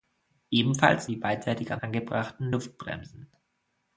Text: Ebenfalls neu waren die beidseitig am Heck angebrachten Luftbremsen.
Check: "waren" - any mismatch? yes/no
yes